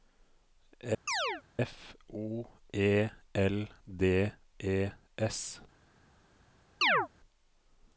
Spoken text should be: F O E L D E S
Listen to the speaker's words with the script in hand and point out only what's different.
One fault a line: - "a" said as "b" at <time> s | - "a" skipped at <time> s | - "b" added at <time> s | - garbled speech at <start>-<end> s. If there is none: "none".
none